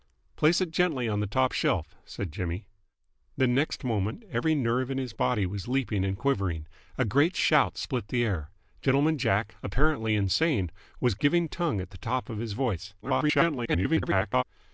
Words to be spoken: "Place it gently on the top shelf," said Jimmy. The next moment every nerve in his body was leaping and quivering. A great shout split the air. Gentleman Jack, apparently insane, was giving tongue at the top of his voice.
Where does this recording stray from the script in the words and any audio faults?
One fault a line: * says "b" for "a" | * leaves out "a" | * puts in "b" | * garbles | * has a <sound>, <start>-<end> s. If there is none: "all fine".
* garbles